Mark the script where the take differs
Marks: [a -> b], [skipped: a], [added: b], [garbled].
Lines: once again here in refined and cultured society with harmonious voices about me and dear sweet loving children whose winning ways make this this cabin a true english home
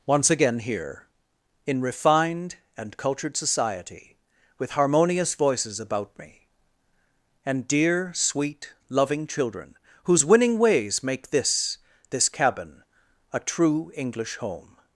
once again here in refined and cultured society with harmonious voices about me and dear sweet loving children whose winning ways make this this cabin a true english home